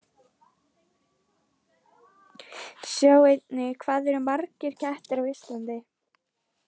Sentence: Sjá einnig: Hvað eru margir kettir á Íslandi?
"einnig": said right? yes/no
yes